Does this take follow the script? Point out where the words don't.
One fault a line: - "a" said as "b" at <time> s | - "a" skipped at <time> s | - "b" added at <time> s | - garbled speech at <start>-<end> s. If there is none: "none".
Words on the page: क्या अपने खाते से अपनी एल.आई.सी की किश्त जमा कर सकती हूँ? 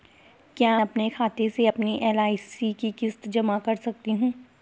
none